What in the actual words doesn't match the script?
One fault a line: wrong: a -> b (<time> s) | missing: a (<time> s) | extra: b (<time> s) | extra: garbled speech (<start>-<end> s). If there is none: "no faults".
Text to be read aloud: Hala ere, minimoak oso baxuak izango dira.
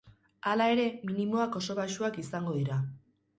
no faults